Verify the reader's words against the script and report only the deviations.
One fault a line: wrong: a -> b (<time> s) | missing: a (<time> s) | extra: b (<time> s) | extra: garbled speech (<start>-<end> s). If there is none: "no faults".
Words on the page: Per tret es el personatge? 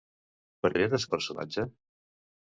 no faults